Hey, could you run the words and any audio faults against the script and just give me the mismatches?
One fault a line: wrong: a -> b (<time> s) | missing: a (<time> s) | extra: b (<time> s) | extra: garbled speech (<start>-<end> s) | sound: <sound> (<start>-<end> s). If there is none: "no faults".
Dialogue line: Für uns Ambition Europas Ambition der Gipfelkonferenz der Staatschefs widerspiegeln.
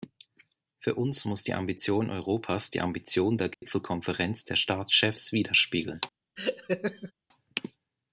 extra: muss die (1.2 s)
extra: die (2.7 s)
sound: dropout (3.5-3.6 s)
sound: laugh (6.4-7.1 s)